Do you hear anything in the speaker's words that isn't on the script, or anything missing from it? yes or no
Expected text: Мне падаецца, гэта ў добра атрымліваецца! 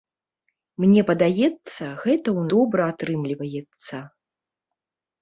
no